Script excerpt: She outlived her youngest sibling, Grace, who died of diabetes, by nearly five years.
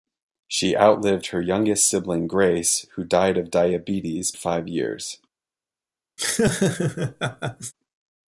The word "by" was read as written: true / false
false